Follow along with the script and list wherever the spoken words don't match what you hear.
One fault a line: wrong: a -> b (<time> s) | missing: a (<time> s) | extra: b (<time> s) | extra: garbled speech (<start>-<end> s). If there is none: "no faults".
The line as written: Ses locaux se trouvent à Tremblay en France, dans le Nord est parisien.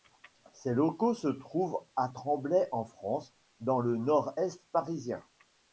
no faults